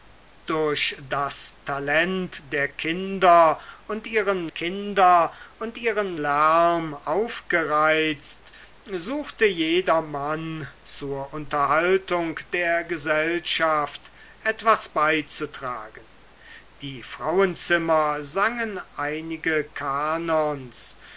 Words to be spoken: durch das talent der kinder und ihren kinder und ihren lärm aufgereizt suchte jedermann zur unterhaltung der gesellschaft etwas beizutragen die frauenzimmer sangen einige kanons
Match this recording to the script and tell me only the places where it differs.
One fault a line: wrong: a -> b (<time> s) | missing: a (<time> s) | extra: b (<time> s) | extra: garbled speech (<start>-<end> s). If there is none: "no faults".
no faults